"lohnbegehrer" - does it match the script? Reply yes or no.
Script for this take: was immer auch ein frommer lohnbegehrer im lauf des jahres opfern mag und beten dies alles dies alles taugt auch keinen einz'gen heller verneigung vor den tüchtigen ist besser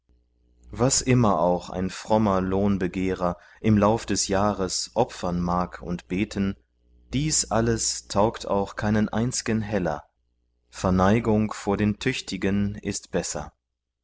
yes